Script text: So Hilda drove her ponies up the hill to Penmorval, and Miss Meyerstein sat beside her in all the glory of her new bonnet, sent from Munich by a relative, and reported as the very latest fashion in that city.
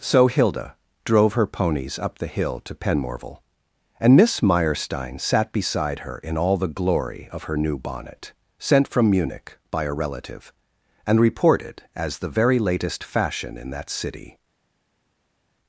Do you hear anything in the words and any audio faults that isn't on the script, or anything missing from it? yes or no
no